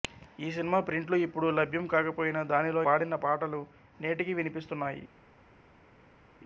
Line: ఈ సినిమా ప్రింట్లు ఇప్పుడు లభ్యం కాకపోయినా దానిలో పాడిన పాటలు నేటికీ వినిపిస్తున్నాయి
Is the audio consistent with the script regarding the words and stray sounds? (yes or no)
yes